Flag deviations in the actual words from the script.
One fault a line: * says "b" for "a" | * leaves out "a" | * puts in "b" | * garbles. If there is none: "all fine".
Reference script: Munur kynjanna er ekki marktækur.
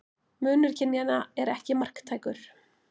all fine